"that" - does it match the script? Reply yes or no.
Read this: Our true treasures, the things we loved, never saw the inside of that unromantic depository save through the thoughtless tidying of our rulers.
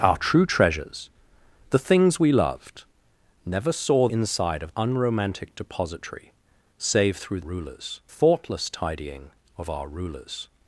no